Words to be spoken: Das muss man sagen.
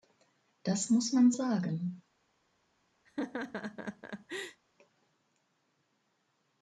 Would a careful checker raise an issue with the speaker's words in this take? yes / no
no